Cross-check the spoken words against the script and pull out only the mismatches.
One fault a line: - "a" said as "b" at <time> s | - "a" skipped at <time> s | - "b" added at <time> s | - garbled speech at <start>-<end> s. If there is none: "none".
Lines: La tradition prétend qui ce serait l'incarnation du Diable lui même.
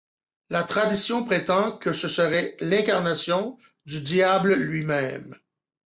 - "qui" said as "que" at 1.8 s